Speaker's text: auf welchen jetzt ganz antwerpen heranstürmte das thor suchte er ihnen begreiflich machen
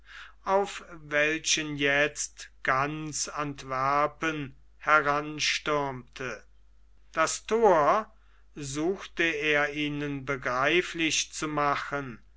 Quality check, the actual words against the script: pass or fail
fail